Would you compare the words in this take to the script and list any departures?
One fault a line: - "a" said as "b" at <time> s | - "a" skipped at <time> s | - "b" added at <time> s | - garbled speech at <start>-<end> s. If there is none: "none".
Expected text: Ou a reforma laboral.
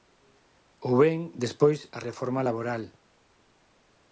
- "ben despois" added at 1.0 s